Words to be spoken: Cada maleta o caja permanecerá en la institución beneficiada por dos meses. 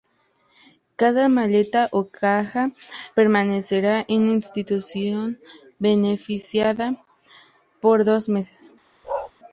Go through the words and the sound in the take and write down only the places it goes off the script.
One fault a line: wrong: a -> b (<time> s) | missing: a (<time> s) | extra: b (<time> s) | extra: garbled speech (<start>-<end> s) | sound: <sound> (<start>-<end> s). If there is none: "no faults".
sound: bark (9.0-9.3 s)